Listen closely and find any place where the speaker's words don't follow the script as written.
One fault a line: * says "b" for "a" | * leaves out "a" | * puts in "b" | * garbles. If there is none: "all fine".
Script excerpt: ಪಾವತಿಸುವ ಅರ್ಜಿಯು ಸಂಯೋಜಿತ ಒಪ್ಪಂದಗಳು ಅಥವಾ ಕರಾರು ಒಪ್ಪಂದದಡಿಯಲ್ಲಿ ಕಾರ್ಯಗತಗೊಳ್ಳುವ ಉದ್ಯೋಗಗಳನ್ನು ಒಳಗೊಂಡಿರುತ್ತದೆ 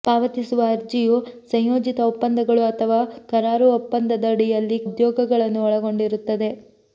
* leaves out "ಕಾರ್ಯಗತಗೊಳ್ಳುವ"